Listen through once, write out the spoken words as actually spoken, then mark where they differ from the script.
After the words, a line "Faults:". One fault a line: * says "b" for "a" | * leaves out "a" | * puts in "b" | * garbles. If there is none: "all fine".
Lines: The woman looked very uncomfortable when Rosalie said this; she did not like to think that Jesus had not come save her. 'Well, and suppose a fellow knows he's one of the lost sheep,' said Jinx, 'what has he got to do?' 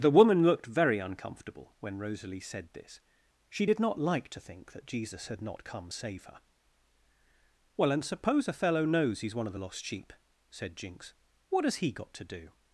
The woman looked very uncomfortable when Rosalie said this; she did not like to think that Jesus had not come save her. 'Well, and suppose a fellow knows he's one of the lost sheep,' said Jinx, 'what has he got to do?'
Faults:
all fine